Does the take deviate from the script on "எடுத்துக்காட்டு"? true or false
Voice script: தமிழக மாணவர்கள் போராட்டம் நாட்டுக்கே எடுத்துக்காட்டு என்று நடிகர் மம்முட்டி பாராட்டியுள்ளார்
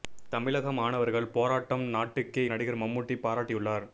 true